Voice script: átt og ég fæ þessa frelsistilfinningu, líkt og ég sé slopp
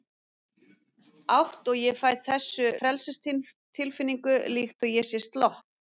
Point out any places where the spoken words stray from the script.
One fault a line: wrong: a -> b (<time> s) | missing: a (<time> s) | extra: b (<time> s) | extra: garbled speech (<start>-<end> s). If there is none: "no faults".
no faults